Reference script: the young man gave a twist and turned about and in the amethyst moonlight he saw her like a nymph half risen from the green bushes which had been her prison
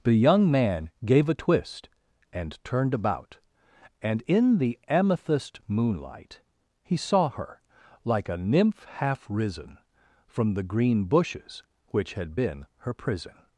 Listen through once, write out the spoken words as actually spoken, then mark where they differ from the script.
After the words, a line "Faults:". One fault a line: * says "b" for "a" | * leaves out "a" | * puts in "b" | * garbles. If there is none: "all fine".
the young man gave a twist and turned about and in the amethyst moonlight he saw her like a nymph half risen from the green bushes which had been her prison
Faults:
all fine